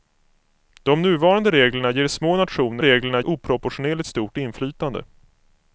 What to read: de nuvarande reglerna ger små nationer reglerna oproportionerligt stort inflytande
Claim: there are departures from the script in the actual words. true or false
false